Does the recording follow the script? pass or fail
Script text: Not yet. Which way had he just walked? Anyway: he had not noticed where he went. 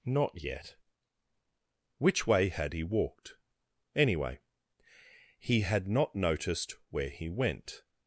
fail